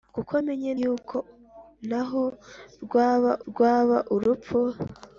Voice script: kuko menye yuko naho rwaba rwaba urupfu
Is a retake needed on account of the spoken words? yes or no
no